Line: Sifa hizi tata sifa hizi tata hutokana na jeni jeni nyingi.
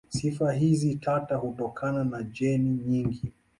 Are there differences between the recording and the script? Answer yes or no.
yes